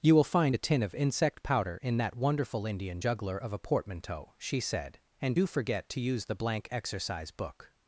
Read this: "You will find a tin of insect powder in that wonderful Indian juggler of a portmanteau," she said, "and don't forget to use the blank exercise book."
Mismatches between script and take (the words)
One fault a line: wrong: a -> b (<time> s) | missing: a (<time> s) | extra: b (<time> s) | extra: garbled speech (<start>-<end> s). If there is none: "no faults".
wrong: don't -> do (5.3 s)